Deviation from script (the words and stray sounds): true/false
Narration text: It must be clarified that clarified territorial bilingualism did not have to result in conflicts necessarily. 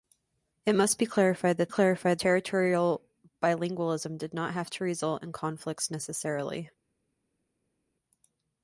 false